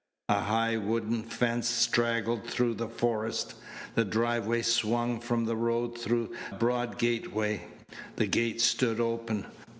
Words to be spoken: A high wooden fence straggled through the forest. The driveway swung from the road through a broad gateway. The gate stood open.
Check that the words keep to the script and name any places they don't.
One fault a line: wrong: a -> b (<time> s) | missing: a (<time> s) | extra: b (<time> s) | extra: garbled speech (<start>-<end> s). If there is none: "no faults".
missing: a (6.3 s)